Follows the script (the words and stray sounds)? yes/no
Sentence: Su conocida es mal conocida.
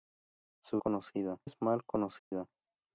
no